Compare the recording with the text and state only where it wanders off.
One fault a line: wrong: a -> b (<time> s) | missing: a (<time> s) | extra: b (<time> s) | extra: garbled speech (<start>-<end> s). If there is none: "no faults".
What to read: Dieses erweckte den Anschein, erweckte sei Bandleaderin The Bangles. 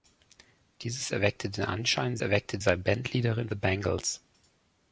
no faults